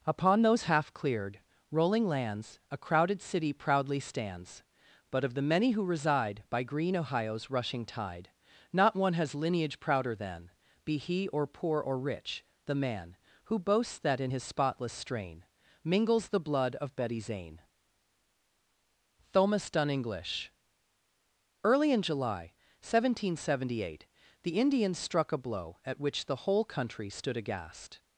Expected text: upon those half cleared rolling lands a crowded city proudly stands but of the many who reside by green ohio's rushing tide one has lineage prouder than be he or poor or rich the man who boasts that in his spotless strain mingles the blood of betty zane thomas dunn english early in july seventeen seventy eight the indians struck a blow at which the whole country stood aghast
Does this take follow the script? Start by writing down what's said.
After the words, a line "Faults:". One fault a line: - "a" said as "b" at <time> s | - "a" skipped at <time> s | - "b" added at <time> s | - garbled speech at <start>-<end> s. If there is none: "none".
upon those half cleared rolling lands a crowded city proudly stands but of the many who reside by green ohio's rushing tide not one has lineage prouder than be he or poor or rich the man who boasts that in his spotless strain mingles the blood of betty zane thomas dunn english early in july seventeen seventy eight the indians struck a blow at which the whole country stood aghast
Faults:
- "not" added at 8.7 s